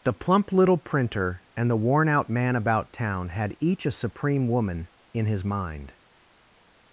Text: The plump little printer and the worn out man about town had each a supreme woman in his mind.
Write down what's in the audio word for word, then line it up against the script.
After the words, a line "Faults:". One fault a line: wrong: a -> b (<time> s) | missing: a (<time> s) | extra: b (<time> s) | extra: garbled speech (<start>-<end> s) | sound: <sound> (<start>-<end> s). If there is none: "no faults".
The plump little printer and the worn out man about town had each a supreme woman in his mind.
Faults:
no faults